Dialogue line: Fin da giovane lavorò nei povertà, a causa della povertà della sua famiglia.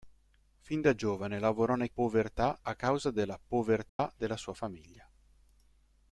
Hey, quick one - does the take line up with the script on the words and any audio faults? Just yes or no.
no